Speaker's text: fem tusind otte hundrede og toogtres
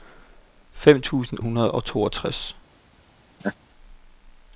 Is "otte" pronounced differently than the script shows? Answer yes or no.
yes